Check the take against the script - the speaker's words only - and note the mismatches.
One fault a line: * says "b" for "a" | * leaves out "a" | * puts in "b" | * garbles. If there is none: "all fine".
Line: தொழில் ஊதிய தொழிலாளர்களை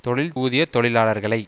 all fine